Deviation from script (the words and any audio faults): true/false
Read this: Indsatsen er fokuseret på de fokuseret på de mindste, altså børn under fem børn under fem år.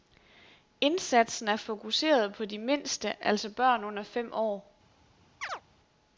true